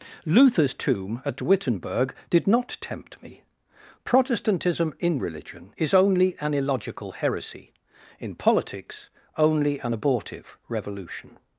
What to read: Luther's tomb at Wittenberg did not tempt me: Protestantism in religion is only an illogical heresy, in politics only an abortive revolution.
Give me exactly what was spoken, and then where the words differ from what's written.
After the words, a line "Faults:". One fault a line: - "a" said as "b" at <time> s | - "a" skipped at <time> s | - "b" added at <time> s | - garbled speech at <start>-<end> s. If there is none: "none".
Luther's tomb at Wittenberg did not tempt me: Protestantism in religion is only an illogical heresy, in politics only an abortive revolution.
Faults:
none